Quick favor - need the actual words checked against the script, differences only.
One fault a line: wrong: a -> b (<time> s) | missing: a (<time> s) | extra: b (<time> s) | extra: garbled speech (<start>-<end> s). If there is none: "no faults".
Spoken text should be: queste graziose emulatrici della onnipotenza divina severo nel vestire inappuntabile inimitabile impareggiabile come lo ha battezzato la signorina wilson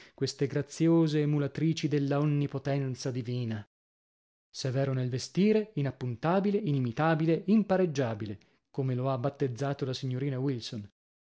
no faults